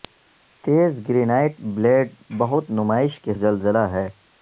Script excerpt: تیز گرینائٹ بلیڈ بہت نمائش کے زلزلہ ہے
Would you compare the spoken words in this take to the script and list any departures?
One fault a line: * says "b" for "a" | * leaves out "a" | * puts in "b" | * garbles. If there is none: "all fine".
all fine